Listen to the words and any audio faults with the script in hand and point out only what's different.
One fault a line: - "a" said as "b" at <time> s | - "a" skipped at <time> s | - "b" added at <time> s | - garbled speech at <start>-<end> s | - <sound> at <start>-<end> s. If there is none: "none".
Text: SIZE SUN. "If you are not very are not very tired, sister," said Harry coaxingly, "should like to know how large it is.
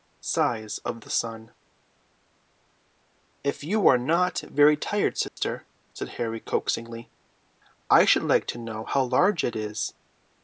- "OF THE" added at 0.8 s
- "are not very" skipped at 4.8 s
- dropout at 5.3-5.4 s
- "I" added at 7.9 s